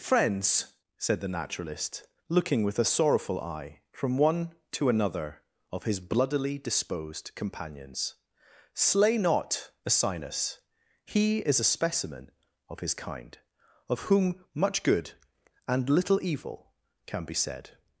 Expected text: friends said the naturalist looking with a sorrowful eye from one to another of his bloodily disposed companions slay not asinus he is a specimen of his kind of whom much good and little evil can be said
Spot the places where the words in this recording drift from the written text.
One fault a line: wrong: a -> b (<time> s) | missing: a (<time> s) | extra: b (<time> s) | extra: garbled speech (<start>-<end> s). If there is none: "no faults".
no faults